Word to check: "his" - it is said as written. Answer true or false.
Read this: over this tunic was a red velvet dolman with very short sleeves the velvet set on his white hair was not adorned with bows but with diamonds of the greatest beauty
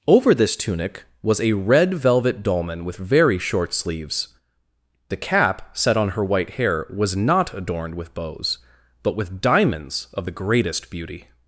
false